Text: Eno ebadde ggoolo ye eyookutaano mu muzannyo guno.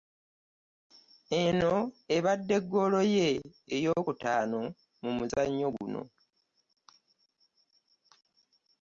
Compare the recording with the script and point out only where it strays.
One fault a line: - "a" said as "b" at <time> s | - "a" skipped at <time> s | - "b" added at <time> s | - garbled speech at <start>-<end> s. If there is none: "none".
none